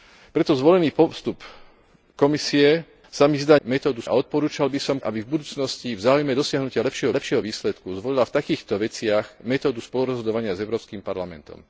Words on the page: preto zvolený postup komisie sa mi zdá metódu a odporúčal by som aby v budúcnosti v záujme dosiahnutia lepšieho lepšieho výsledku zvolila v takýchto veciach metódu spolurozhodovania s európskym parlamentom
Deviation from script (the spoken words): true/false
false